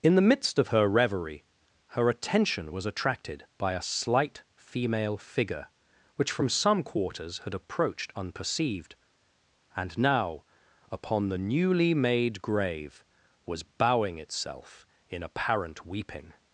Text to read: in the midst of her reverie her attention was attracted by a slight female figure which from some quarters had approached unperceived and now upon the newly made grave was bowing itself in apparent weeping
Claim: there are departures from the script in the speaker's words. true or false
false